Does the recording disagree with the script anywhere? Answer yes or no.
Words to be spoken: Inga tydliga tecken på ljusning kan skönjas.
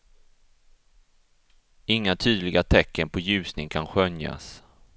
no